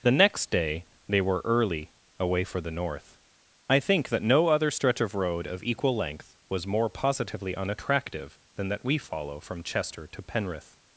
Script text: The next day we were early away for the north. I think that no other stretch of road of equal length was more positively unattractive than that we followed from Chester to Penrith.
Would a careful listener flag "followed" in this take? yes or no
yes